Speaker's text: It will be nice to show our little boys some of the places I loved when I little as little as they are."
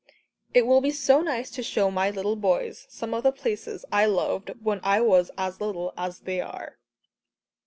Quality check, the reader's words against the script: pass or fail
fail